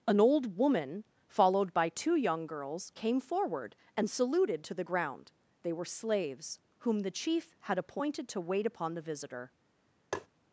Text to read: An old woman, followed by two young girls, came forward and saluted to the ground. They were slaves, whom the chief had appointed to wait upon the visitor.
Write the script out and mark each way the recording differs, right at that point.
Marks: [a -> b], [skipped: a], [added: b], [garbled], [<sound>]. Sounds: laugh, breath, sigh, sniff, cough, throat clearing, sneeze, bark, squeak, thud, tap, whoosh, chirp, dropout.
An old woman, followed by two young girls, came forward and saluted to the ground. They were slaves, whom the chief had appointed to wait upon the visitor. [tap]